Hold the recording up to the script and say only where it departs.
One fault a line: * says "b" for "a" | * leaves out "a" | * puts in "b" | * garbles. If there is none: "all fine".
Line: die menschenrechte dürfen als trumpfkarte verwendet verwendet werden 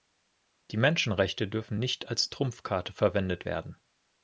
* puts in "nicht"
* leaves out "verwendet"